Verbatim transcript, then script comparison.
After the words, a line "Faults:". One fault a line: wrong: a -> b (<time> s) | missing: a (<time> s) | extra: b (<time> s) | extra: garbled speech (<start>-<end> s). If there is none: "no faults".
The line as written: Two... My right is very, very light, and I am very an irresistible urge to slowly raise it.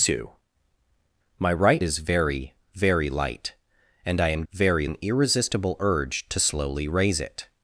Two... My right is very, very light, and I am very an irresistible urge to slowly raise it.
Faults:
no faults